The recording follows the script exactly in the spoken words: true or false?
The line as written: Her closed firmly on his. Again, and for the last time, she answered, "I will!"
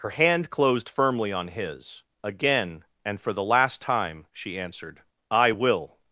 false